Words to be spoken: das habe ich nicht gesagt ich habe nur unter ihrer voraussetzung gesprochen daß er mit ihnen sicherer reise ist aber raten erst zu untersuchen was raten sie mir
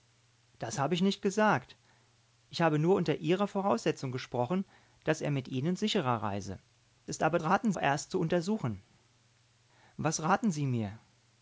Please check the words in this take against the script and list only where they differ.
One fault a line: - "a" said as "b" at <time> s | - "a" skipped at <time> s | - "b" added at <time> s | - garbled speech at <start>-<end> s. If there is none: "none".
none